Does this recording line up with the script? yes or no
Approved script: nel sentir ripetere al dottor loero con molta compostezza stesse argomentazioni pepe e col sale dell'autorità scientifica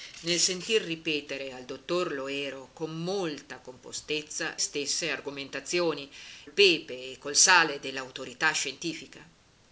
yes